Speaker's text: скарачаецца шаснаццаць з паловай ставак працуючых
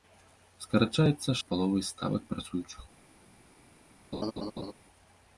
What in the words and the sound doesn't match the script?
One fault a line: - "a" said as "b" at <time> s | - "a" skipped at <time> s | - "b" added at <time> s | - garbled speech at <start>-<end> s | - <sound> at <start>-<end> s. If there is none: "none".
- "шаснаццаць" skipped at 1.4 s
- laugh at 4.1-4.7 s